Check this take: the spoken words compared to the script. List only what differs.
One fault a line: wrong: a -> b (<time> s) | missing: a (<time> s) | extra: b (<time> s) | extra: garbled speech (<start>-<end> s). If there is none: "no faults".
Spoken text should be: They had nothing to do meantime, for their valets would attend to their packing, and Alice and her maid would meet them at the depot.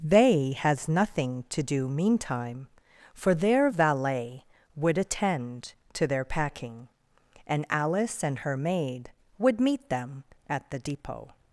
wrong: had -> has (0.6 s)
wrong: valets -> valet (3.7 s)